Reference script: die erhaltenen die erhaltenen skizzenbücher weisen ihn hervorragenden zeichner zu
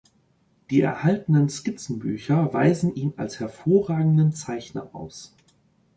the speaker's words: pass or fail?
fail